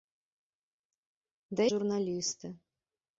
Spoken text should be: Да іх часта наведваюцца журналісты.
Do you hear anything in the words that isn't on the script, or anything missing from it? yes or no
yes